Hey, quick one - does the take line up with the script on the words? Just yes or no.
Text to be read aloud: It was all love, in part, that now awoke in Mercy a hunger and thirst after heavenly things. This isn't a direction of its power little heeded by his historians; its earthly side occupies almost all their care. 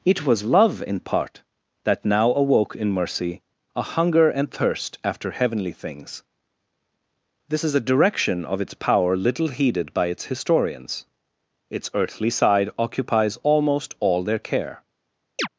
no